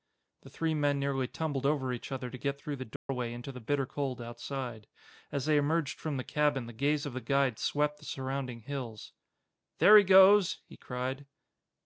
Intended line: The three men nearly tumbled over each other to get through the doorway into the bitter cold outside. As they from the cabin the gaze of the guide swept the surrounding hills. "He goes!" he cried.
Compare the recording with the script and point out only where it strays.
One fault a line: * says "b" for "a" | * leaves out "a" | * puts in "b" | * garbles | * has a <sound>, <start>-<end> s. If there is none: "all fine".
* has a dropout, 3.0-3.1 s
* puts in "emerged"
* puts in "There"